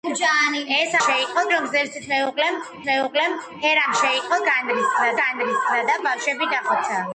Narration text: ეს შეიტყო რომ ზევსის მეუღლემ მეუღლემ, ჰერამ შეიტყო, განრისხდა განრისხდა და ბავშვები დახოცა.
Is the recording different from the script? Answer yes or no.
no